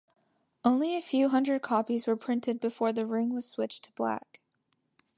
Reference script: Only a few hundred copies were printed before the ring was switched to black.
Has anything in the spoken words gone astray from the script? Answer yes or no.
no